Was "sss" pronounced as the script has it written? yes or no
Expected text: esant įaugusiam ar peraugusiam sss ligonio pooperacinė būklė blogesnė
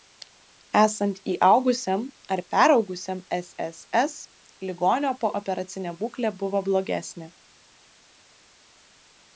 yes